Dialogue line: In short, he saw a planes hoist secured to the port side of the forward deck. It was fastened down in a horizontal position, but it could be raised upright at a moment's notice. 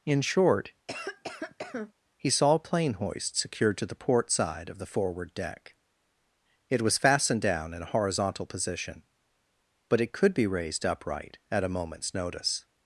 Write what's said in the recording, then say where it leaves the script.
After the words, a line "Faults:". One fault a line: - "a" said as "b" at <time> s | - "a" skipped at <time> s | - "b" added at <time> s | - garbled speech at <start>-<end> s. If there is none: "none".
In short, he saw a plane hoist secured to the port side of the forward deck. It was fastened down in a horizontal position, but it could be raised upright at a moment's notice.
Faults:
- "planes" said as "plane" at 2.6 s